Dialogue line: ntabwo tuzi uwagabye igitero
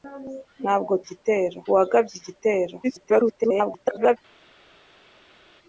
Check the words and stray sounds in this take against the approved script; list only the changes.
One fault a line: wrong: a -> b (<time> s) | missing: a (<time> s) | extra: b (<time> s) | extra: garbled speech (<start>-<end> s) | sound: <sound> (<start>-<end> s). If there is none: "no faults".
wrong: tuzi -> igitero (1.0 s)
extra: garbled speech (2.8-4.2 s)